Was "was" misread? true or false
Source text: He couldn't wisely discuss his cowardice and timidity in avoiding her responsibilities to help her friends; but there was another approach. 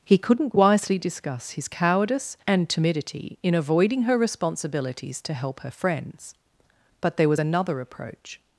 false